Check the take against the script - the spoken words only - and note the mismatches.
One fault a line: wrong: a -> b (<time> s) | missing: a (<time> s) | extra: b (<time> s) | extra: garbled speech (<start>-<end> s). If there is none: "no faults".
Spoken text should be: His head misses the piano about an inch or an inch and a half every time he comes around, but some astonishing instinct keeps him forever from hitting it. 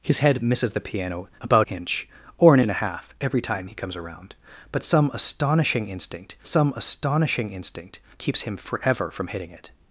missing: an (1.7 s)
missing: inch (2.6 s)
extra: some astonishing instinct (6.5 s)